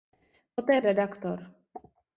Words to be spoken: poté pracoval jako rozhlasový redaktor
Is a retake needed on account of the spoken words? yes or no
yes